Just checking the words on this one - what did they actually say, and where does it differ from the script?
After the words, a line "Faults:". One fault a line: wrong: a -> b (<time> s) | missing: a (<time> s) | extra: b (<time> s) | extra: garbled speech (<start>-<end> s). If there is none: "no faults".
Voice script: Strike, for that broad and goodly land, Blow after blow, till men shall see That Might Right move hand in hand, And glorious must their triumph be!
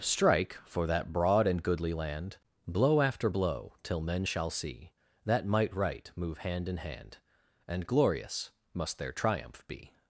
Strike, for that broad and goodly land, Blow after blow, till men shall see That Might Right move hand in hand, And glorious must their triumph be!
Faults:
no faults